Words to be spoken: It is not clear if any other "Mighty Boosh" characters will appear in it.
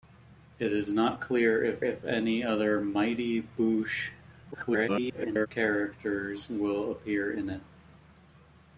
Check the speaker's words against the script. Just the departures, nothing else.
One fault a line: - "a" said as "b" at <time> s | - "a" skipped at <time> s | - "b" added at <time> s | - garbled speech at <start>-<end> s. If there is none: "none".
- "if" added at 1.8 s
- garbled speech at 4.5-5.5 s